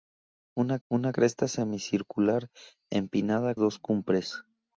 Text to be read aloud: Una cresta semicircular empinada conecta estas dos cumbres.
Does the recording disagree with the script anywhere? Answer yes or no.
yes